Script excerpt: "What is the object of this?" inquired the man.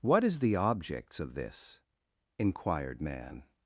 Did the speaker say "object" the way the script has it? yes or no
no